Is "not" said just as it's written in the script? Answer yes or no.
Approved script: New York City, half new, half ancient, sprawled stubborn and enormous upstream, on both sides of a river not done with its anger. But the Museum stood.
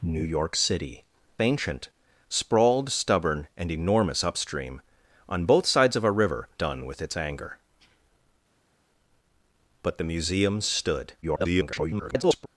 no